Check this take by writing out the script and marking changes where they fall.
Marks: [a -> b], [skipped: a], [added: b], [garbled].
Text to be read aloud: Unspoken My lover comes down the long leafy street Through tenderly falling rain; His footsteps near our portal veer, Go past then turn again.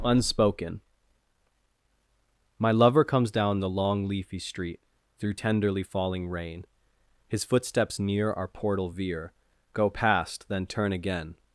Unspoken My lover comes down the long leafy street Through tenderly falling rain; His footsteps near our portal veer, Go past then turn again.